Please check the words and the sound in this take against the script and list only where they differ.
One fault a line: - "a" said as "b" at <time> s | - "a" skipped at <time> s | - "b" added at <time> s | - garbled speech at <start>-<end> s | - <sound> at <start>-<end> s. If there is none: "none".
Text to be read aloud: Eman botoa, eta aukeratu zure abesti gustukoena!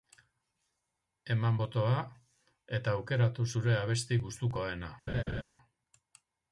- laugh at 5.1-5.4 s